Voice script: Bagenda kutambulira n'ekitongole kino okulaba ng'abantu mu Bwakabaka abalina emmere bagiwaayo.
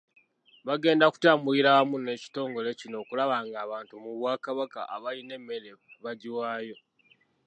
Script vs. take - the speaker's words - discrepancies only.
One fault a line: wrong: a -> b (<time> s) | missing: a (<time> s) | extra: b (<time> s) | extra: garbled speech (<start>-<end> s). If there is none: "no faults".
extra: wamu (1.8 s)